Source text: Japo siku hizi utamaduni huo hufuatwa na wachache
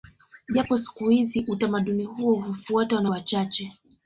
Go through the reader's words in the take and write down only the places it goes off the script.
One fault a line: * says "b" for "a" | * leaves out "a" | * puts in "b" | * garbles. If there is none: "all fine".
all fine